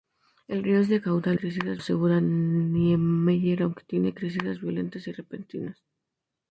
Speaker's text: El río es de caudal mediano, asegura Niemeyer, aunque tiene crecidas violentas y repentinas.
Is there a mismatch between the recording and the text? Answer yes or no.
yes